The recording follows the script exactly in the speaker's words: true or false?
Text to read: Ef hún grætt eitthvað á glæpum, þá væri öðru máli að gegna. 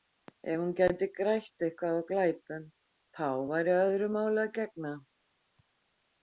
false